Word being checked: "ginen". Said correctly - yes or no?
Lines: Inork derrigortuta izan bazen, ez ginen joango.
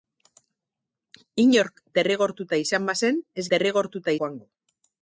no